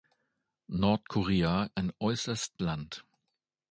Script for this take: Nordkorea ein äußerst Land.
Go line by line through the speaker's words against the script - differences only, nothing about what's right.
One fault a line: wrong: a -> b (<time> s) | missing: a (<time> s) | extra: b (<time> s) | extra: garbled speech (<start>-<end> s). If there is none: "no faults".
no faults